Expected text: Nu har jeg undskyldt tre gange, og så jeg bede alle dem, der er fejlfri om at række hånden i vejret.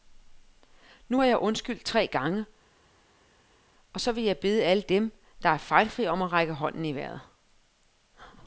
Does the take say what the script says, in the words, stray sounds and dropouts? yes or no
no